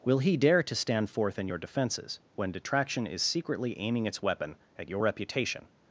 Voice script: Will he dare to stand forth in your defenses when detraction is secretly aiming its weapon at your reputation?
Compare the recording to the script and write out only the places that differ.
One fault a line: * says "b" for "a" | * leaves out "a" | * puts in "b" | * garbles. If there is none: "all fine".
all fine